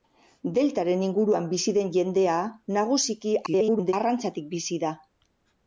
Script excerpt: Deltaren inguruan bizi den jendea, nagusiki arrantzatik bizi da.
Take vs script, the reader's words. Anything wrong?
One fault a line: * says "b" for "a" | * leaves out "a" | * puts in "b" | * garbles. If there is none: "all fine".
* garbles